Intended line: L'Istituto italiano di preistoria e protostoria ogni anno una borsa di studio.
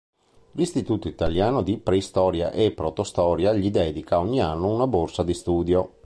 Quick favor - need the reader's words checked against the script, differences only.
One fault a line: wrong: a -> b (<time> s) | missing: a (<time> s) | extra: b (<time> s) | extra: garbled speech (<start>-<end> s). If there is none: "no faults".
extra: gli dedica (3.5 s)